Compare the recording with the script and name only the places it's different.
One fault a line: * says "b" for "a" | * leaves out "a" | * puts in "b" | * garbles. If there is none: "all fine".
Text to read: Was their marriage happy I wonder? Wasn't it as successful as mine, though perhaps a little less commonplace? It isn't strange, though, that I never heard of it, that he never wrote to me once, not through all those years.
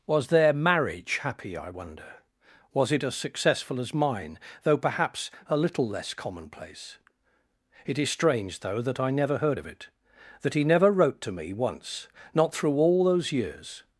* says "Was" for "Wasn't"
* says "is" for "isn't"